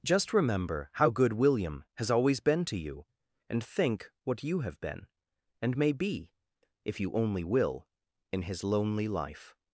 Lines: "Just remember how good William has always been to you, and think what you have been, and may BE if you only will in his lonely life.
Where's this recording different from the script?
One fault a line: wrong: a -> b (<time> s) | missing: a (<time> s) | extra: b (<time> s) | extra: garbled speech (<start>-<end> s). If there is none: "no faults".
no faults